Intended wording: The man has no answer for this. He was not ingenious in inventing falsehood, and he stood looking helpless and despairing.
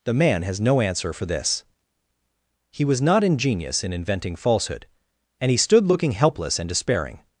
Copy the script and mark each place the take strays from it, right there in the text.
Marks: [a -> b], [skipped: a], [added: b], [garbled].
The man has no answer for this. He was not ingenious in inventing falsehood, and he stood looking helpless and despairing.